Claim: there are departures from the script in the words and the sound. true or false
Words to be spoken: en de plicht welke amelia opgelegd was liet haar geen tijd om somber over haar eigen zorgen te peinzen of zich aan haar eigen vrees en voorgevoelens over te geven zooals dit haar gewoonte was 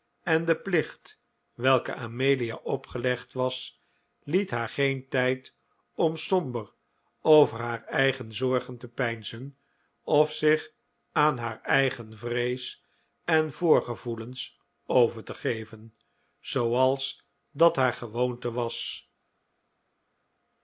true